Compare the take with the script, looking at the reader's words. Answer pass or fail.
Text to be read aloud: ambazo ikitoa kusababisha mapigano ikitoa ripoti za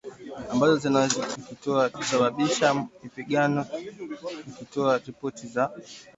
pass